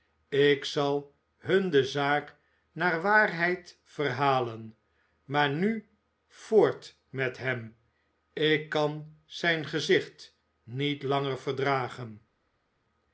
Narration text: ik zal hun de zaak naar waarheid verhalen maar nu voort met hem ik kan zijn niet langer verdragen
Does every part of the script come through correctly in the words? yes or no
no